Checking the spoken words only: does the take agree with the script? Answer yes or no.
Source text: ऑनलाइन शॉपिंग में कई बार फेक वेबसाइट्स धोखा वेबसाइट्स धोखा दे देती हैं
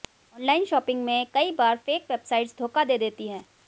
no